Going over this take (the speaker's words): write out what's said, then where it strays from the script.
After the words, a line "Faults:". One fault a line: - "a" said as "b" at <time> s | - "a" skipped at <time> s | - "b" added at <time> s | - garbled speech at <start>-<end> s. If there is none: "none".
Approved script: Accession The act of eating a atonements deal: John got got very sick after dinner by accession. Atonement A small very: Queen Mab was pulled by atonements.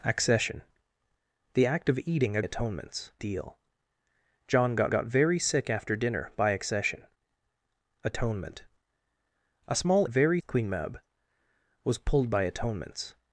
Accession The act of eating a atonements deal: John got got very sick after dinner by accession. Atonement A small very: Queen Mab was pulled by atonements.
Faults:
none